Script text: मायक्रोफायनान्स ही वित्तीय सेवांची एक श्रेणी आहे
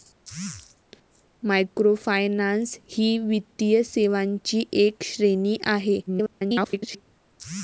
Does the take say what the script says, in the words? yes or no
no